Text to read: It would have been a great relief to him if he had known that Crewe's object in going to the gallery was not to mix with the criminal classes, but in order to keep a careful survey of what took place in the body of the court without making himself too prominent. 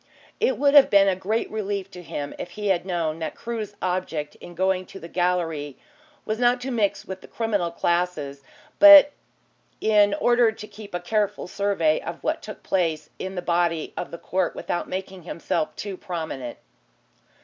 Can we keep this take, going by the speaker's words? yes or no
yes